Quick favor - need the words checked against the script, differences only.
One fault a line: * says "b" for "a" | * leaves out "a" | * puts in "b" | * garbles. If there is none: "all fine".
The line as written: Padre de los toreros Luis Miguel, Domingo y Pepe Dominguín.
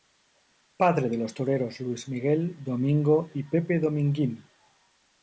all fine